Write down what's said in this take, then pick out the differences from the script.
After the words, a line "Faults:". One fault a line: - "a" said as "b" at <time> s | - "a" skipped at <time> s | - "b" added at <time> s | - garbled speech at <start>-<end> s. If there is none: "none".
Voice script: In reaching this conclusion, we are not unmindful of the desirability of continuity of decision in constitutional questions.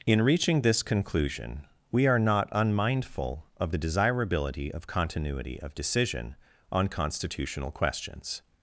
In reaching this conclusion, we are not unmindful of the desirability of continuity of decision on constitutional questions.
Faults:
- "in" said as "on" at 6.7 s